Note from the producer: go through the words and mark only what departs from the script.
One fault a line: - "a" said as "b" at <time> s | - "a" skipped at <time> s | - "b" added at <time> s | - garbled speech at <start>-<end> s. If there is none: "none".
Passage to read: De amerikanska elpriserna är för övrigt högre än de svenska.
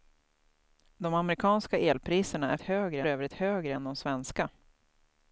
- "för" said as "högre" at 2.6 s